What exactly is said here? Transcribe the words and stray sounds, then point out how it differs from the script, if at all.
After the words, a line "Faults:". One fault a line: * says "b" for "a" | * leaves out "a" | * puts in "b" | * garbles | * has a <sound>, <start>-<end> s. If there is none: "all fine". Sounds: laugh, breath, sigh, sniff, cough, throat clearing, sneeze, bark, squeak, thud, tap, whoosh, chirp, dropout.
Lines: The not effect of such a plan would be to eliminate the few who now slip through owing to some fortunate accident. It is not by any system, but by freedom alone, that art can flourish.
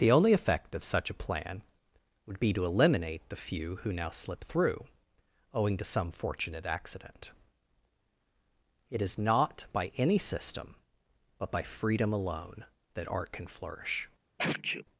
The only effect of such a plan would be to eliminate the few who now slip through owing to some fortunate accident. It is not by any system, but by freedom alone, that art can flourish.
Faults:
* says "only" for "not"
* has a sneeze, 14.4-14.9 s